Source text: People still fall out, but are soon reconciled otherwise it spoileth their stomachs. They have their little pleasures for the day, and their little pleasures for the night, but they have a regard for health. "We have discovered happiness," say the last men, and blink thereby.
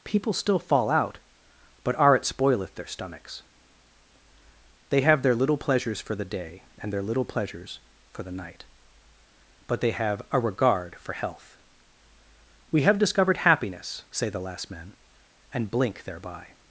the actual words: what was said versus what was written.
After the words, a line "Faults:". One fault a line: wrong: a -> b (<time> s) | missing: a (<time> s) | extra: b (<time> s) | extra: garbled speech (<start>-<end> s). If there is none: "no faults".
People still fall out, but are it spoileth their stomachs. They have their little pleasures for the day, and their little pleasures for the night, but they have a regard for health. "We have discovered happiness," say the last men, and blink thereby.
Faults:
missing: soon reconciled otherwise (2.1 s)